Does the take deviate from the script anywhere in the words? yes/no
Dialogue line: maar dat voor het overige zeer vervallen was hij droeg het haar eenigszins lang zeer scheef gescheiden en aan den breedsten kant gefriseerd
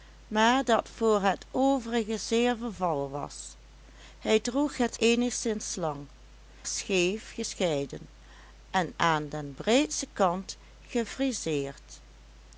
yes